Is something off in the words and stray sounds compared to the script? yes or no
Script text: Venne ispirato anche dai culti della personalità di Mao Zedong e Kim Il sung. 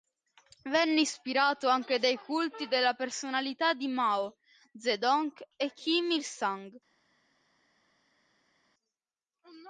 no